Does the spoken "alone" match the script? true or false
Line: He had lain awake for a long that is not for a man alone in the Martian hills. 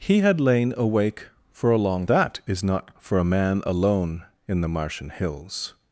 true